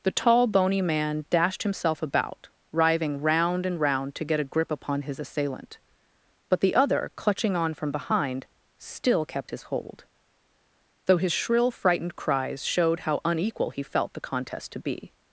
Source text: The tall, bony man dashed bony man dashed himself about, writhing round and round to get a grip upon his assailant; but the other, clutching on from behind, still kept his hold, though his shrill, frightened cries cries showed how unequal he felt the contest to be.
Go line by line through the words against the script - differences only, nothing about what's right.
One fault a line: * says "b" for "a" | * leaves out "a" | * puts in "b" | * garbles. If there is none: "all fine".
* leaves out "bony man dashed"
* leaves out "cries"